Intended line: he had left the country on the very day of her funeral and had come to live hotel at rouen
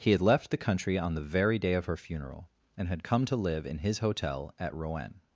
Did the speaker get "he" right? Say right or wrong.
right